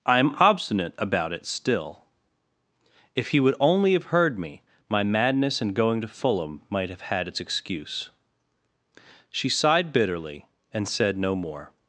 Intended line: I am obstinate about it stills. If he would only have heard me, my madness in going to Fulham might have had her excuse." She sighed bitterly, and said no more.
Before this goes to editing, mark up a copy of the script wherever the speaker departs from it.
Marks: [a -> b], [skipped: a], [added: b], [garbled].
I am obstinate about it [stills. -> still] If he would only have heard me, my madness in going to Fulham might have had [her -> its] excuse." She sighed bitterly, and said no more.